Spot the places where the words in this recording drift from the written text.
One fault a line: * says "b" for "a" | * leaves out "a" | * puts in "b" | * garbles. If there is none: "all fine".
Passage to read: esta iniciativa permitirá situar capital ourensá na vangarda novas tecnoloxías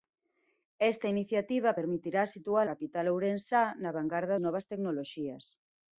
all fine